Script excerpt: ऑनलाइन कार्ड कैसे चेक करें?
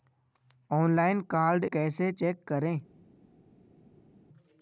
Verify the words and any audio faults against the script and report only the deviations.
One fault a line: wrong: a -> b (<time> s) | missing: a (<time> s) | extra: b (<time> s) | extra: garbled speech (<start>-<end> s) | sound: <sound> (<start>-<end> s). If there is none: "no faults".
no faults